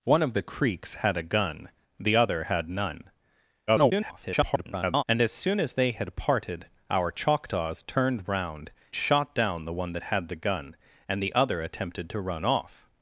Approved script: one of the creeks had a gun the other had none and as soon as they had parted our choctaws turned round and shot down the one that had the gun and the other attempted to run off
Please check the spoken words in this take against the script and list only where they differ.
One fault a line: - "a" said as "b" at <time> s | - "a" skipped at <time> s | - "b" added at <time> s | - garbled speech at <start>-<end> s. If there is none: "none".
- garbled speech at 3.7-5.0 s
- "and" skipped at 8.7 s